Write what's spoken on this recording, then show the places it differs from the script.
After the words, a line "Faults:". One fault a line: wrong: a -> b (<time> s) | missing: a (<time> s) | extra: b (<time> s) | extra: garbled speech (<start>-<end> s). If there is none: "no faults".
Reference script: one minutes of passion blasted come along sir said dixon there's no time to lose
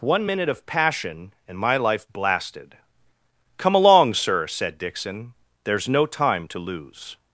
one minute of passion and my life blasted come along sir said dixon there's no time to lose
Faults:
wrong: minutes -> minute (0.3 s)
extra: and my life (1.5 s)